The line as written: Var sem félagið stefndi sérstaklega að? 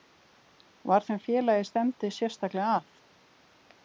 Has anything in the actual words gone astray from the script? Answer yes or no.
no